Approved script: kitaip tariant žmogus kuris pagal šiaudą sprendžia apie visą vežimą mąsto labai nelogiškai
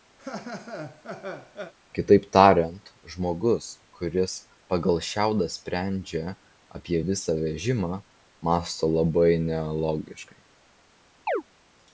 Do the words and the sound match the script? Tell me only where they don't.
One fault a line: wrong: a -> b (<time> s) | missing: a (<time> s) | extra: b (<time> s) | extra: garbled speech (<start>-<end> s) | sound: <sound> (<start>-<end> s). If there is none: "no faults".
sound: laugh (0.2-1.7 s)
sound: chirp (11.3-11.4 s)